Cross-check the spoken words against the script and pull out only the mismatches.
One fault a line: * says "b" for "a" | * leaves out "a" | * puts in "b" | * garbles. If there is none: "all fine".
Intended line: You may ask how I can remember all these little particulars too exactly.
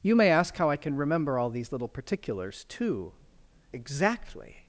all fine